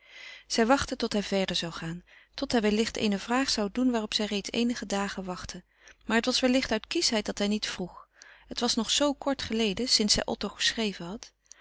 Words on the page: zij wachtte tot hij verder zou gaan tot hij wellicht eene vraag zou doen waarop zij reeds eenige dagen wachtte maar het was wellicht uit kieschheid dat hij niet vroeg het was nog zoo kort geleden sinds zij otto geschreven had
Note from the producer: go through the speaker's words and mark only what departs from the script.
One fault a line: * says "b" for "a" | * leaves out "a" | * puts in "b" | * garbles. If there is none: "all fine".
all fine